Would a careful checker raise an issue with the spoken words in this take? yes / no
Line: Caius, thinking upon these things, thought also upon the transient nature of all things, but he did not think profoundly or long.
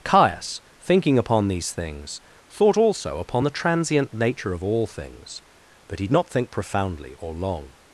yes